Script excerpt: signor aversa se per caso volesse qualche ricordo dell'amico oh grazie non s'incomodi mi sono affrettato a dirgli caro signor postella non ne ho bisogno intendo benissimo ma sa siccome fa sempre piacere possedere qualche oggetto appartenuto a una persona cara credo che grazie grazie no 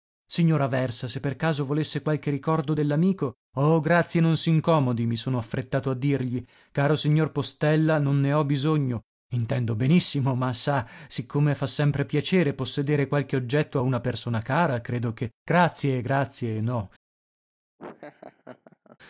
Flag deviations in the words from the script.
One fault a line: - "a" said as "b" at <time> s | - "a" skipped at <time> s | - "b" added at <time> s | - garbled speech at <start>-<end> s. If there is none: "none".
- "appartenuto" skipped at 13.8 s